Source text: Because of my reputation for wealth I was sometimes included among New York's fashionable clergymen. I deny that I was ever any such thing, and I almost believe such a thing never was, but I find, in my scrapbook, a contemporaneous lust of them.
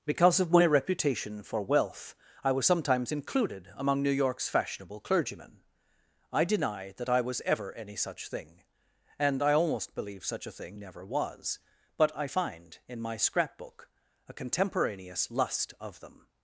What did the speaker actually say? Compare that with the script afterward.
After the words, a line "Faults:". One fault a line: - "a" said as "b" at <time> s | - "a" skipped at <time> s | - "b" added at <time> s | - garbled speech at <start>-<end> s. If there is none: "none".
Because of my reputation for wealth I was sometimes included among New York's fashionable clergymen. I deny that I was ever any such thing, and I almost believe such a thing never was, but I find, in my scrapbook, a contemporaneous lust of them.
Faults:
none